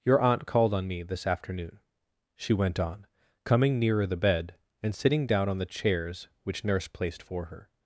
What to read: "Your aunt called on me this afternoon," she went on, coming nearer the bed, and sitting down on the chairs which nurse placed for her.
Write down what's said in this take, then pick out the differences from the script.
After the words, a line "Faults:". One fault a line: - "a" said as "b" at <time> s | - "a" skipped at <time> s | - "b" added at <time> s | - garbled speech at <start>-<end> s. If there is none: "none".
"Your aunt called on me this afternoon," she went on, coming nearer the bed, and sitting down on the chairs which nurse placed for her.
Faults:
none